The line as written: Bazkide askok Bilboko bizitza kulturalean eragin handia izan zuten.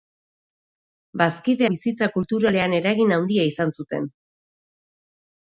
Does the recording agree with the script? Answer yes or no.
no